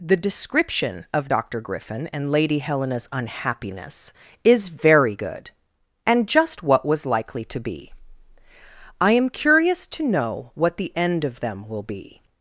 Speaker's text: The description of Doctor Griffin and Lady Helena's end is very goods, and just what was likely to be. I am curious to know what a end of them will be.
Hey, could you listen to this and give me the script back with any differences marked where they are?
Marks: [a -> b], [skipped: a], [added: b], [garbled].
The description of Doctor Griffin and Lady Helena's [end -> unhappiness] is very [goods, -> good] and just what was likely to be. I am curious to know what [a -> the] end of them will be.